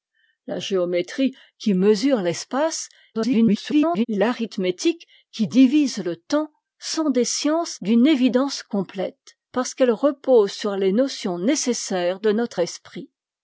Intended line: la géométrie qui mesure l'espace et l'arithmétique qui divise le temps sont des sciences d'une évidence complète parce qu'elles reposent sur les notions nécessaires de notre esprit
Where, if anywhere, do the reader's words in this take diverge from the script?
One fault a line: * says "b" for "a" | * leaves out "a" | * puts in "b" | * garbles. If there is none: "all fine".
* garbles